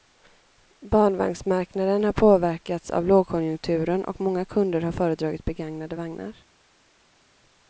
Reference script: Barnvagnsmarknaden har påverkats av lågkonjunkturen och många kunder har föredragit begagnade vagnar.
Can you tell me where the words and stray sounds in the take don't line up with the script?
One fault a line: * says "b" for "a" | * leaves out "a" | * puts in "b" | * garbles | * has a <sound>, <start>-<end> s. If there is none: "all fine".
all fine